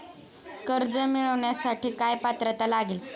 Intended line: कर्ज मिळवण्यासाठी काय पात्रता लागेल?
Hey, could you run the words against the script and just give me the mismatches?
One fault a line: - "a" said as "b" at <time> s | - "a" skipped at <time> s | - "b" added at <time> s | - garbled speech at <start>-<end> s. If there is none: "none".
none